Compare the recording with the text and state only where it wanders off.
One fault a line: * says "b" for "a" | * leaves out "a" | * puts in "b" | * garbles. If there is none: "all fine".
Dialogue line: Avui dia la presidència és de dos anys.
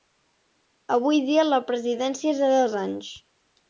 all fine